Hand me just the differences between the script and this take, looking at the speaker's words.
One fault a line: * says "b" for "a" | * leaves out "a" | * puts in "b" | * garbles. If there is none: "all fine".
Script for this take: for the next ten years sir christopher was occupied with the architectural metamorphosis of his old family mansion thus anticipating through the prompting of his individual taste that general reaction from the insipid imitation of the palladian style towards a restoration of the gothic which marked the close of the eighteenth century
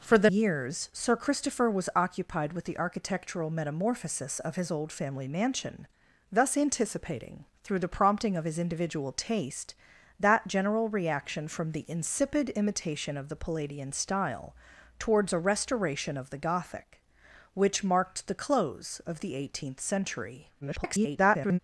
* leaves out "next ten"
* garbles